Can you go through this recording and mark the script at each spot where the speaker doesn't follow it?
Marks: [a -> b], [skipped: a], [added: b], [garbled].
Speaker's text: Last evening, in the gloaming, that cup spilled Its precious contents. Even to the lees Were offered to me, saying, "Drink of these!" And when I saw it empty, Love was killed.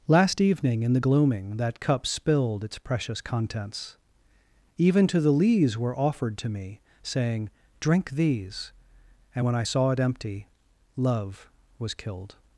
Last evening, in the gloaming, that cup spilled Its precious contents. Even to the lees Were offered to me, saying, "Drink [skipped: of] these!" And when I saw it empty, Love was killed.